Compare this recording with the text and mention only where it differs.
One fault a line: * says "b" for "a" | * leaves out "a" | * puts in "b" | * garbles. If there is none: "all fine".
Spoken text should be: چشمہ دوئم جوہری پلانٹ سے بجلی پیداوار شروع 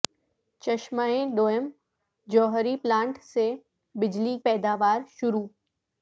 all fine